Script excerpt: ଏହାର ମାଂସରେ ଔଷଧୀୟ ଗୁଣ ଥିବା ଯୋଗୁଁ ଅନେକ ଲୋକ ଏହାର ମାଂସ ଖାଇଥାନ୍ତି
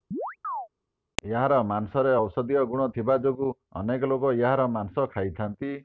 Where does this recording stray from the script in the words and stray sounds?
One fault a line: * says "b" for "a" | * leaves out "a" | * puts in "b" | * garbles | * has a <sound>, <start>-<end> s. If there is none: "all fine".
* has a chirp, 0.1-0.7 s